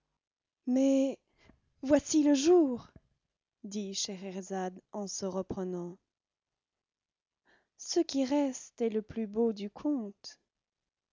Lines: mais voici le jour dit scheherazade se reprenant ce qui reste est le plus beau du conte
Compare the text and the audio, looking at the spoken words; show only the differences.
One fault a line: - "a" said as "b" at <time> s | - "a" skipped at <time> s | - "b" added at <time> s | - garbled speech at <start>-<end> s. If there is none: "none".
- "en" added at 4.9 s